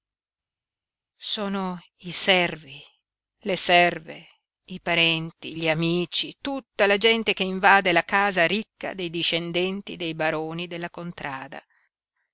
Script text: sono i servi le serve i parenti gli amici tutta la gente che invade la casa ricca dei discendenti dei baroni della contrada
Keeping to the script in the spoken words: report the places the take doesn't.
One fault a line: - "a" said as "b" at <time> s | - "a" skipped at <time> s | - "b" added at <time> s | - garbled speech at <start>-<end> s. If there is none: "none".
none